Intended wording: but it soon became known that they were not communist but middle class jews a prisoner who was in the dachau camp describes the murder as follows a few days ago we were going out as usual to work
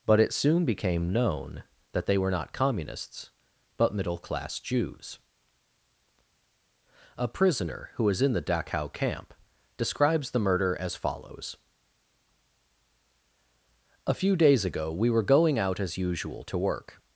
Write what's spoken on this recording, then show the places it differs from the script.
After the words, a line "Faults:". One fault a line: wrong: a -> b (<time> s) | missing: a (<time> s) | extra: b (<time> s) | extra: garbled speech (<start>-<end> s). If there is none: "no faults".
but it soon became known that they were not communists but middle class jews a prisoner who was in the dachau camp describes the murder as follows a few days ago we were going out as usual to work
Faults:
wrong: communist -> communists (2.5 s)